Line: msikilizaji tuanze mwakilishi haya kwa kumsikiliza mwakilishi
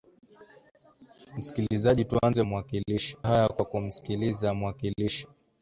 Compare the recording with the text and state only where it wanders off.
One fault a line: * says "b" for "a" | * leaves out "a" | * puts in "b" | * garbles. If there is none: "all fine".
all fine